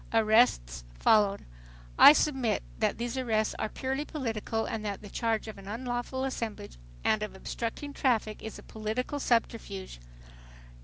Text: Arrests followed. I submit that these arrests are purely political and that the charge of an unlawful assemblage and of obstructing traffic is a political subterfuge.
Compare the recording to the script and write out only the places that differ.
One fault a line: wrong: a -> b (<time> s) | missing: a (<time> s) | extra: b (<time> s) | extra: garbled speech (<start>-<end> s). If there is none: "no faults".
no faults